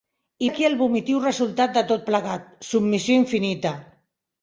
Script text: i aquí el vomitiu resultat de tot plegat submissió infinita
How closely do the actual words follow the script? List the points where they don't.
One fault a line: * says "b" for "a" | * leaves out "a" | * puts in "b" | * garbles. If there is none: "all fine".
all fine